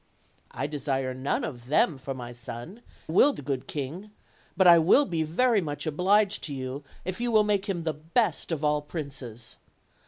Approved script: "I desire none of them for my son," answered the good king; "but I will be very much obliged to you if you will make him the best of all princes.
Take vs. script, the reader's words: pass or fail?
fail